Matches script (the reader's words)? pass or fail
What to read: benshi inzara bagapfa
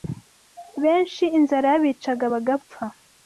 fail